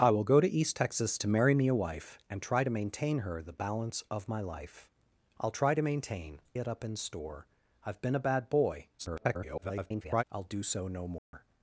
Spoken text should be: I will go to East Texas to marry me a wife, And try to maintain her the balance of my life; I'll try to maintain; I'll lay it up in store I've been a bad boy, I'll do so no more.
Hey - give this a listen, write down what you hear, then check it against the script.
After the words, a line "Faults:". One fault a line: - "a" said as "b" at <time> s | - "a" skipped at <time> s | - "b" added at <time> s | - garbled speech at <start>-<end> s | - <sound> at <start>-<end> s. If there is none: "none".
I will go to East Texas to marry me a wife, And try to maintain her the balance of my life; I'll try to maintain; It up in store I've been a bad boy, [garbled] I'll do so no more.
Faults:
- "I'll lay" skipped at 6.4 s
- garbled speech at 9.0-10.2 s
- dropout at 11.2-11.3 s